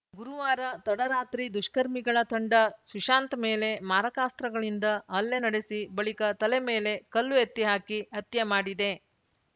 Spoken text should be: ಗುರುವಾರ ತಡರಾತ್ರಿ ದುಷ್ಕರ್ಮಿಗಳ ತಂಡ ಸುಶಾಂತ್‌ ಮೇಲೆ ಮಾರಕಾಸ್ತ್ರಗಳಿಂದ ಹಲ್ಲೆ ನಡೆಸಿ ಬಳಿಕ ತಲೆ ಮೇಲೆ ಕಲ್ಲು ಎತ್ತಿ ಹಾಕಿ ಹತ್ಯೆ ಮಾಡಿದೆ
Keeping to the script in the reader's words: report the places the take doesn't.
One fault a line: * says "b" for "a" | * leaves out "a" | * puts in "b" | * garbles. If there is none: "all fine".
all fine